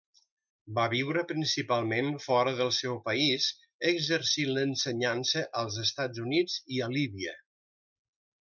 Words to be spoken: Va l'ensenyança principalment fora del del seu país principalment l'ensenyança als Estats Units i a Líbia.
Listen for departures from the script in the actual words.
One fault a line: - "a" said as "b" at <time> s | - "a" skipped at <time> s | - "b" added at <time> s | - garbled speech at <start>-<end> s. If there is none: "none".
- "l'ensenyança" said as "viure" at 0.9 s
- "del" skipped at 2.7 s
- "principalment" said as "exercint" at 3.9 s